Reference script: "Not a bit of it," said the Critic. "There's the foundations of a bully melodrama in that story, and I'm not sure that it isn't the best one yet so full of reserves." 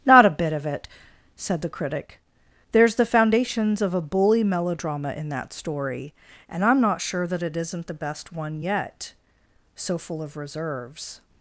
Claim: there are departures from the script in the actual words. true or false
false